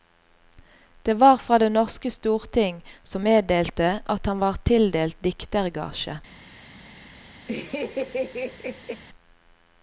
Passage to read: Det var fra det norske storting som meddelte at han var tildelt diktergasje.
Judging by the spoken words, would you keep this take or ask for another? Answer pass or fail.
pass